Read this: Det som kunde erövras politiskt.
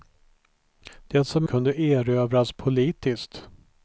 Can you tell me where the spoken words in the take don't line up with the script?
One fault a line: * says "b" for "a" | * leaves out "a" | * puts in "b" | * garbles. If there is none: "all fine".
all fine